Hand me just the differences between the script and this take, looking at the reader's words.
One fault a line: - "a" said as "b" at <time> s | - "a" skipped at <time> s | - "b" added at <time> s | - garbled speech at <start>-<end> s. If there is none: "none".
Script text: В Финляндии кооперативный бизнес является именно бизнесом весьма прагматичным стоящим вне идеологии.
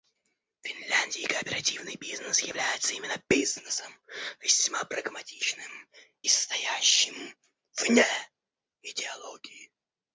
none